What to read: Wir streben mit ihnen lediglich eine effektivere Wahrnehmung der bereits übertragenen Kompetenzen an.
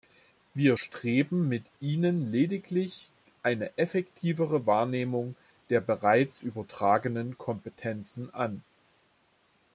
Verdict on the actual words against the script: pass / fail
pass